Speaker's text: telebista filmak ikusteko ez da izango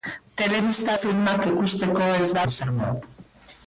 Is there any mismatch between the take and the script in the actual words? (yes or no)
no